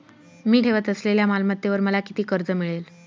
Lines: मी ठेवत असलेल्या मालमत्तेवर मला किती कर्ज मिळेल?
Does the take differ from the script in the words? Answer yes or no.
no